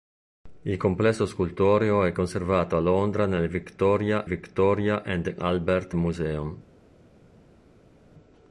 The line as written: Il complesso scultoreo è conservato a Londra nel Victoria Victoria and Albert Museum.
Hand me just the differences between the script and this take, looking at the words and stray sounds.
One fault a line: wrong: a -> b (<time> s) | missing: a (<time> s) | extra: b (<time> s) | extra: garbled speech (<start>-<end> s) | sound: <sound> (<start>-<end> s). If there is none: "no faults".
no faults